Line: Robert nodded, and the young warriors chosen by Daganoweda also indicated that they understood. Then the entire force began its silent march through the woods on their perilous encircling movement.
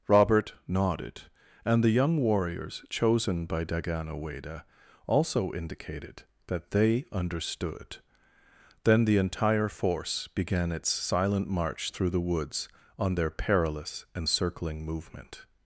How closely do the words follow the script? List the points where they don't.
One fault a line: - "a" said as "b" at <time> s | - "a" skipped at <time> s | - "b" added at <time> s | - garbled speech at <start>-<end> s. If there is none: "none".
none